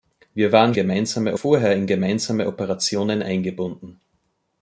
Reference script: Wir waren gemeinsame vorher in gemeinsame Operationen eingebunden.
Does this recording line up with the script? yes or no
yes